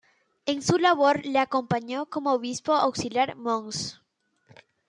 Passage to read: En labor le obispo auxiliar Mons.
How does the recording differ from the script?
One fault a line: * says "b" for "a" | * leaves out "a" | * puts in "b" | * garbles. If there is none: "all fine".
* puts in "su"
* puts in "acompañó como"